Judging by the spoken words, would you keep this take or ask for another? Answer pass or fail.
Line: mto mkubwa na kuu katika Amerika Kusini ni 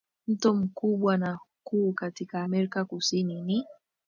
pass